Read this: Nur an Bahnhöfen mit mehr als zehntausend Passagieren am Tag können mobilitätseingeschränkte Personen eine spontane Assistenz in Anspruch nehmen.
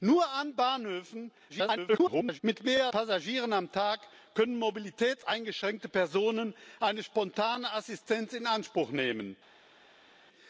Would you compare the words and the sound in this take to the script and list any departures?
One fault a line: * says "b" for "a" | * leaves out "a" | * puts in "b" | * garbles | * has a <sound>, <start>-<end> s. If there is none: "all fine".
* garbles
* leaves out "als zehntausend"